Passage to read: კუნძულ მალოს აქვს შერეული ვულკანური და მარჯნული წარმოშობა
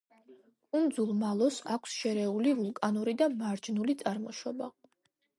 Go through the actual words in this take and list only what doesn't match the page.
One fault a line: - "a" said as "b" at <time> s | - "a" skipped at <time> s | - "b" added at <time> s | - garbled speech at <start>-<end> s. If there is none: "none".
none